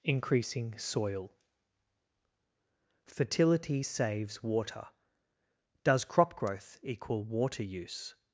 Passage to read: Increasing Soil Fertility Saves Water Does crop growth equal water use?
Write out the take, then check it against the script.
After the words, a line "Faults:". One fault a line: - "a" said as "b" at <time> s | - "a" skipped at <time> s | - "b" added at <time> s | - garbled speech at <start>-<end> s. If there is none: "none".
Increasing Soil Fertility Saves Water Does crop growth equal water use?
Faults:
none